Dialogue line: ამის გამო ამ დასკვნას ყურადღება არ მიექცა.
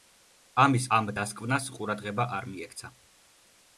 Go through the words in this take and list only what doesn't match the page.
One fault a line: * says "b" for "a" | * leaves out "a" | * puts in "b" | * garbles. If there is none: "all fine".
* leaves out "გამო"